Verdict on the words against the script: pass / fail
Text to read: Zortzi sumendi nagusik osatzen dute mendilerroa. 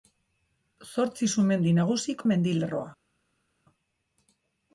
fail